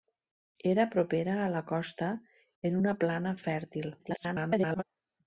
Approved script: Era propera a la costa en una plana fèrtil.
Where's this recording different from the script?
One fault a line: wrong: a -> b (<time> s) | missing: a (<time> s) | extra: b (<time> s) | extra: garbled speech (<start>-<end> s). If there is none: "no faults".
extra: garbled speech (4.0-4.8 s)